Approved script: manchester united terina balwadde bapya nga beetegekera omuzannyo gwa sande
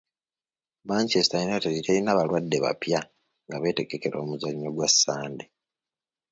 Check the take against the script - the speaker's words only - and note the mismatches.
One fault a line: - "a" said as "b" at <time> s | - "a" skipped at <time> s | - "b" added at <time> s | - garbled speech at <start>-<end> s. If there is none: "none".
none